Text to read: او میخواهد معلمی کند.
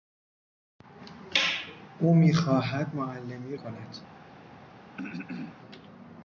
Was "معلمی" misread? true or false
false